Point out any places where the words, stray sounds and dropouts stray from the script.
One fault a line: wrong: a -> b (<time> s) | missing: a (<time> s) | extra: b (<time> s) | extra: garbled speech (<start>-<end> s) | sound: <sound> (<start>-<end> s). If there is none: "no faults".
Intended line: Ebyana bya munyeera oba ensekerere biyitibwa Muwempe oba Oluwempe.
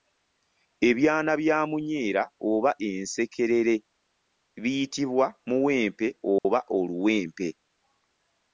sound: dropout (6.4-6.4 s)